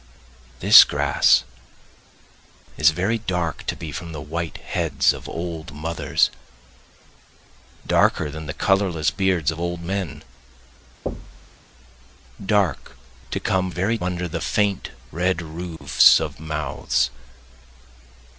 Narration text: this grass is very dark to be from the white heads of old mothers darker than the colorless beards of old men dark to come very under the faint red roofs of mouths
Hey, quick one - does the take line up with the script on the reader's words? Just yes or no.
yes